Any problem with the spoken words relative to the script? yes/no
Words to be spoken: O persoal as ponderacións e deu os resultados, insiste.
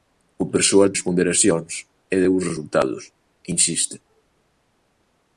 no